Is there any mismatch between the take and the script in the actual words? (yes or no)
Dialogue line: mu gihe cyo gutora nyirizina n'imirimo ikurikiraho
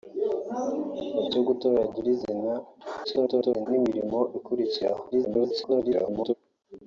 yes